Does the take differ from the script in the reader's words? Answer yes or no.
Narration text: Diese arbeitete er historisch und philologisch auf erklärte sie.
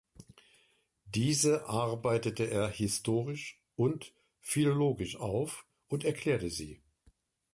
yes